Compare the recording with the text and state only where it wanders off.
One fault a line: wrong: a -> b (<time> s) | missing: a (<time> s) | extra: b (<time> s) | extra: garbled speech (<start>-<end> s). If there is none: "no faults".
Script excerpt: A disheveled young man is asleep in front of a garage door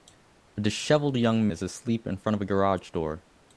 missing: man (1.5 s)